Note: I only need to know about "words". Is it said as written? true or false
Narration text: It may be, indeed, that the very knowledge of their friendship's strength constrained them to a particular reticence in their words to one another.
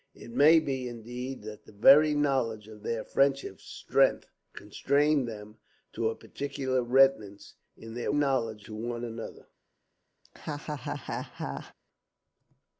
false